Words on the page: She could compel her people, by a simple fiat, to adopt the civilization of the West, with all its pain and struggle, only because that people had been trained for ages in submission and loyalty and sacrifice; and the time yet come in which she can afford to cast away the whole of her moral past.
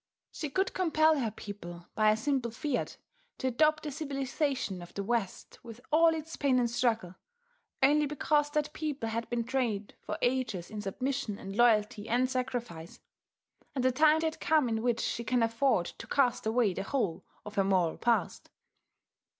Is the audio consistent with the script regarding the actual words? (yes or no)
yes